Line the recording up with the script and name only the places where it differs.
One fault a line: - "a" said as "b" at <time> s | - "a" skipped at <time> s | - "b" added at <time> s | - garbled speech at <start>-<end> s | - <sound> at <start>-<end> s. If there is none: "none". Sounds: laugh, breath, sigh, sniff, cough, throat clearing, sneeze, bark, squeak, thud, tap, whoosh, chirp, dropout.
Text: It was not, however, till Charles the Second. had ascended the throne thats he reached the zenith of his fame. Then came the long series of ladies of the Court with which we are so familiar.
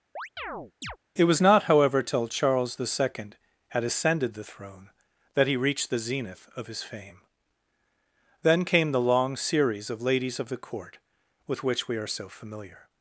- chirp at 0.2-1.0 s
- "thats" said as "that" at 5.3 s